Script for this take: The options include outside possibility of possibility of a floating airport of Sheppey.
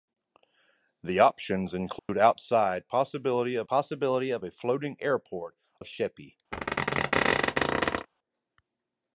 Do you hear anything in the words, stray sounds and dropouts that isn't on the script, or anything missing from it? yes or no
yes